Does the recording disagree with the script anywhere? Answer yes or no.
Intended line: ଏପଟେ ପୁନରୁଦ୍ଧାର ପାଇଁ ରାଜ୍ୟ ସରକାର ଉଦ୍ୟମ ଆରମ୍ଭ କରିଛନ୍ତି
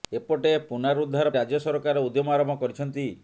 yes